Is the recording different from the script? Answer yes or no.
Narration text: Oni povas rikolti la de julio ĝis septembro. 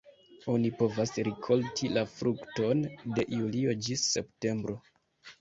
yes